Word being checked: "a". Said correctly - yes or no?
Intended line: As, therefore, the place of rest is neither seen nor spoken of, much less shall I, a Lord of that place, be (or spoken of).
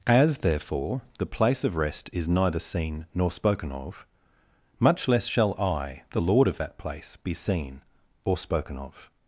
no